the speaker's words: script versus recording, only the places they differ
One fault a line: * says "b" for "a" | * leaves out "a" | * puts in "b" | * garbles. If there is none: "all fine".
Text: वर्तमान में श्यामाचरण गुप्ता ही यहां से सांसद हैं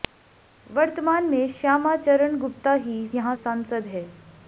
* leaves out "से"